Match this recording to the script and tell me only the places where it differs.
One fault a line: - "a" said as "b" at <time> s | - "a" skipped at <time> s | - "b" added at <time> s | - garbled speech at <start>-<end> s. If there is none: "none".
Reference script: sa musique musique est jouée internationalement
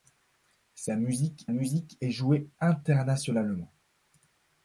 none